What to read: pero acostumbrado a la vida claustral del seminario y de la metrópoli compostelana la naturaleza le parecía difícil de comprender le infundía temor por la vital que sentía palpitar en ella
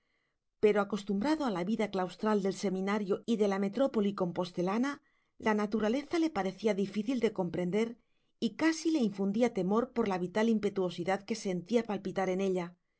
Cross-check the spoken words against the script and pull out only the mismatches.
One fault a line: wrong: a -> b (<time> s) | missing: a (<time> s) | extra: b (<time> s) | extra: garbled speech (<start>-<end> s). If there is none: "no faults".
extra: y casi (8.4 s)
extra: impetuosidad (10.5 s)